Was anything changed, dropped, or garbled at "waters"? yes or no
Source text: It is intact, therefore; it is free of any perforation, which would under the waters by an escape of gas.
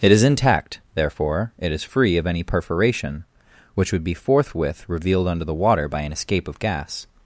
yes